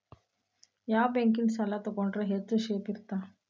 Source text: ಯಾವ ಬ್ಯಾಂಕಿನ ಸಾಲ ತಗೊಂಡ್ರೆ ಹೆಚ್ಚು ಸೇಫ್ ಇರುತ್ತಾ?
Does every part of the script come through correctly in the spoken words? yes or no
yes